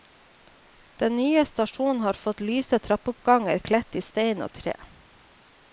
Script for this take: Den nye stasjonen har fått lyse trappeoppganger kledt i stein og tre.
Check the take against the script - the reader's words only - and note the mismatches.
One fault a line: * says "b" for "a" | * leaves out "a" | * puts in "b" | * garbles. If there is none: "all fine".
all fine